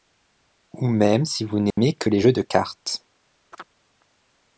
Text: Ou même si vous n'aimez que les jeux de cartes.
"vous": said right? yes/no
yes